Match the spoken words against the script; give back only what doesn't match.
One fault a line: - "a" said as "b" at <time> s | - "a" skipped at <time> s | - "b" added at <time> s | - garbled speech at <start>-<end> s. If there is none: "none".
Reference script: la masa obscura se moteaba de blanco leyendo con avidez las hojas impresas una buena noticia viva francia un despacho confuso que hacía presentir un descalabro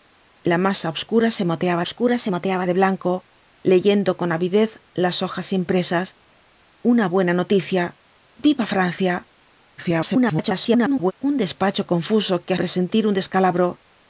- "obscura se moteaba" added at 1.8 s
- garbled speech at 9.8-11.1 s
- "hacía" skipped at 12.5 s